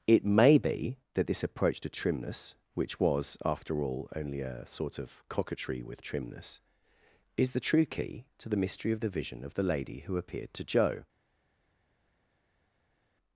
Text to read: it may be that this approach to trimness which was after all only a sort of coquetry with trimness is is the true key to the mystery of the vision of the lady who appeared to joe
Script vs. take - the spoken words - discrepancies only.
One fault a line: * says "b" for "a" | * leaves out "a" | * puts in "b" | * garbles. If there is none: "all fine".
* leaves out "is"